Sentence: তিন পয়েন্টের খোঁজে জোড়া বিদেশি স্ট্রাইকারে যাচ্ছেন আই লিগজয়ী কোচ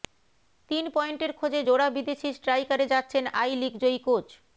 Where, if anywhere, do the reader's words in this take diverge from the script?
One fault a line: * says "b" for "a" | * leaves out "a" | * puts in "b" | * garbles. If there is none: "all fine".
all fine